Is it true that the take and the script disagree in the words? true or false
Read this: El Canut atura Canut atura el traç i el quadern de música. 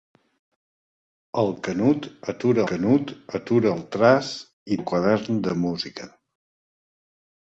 false